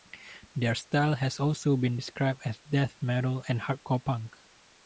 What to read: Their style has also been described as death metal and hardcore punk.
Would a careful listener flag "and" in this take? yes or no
no